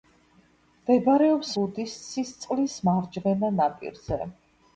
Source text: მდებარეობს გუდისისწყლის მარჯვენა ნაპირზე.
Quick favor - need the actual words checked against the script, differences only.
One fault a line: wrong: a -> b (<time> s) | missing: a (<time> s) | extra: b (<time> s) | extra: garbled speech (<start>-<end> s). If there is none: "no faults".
no faults